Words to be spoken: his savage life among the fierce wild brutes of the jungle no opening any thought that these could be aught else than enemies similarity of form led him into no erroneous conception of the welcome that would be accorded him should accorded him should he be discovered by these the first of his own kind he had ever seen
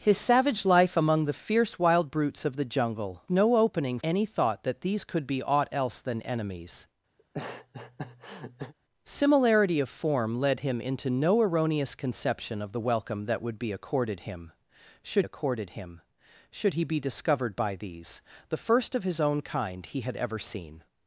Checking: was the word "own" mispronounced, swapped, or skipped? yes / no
no